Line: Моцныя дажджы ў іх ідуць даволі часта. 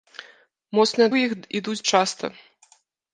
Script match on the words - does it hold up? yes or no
no